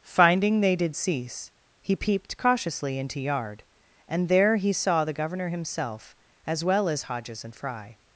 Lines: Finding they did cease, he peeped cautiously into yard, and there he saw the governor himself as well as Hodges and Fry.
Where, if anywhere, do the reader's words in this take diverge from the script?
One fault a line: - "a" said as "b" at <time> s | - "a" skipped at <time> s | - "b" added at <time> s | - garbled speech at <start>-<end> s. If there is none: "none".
none